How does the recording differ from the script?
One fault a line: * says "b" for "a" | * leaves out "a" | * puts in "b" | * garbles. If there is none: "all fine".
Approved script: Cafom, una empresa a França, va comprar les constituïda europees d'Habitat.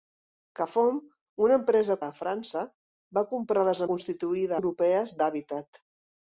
all fine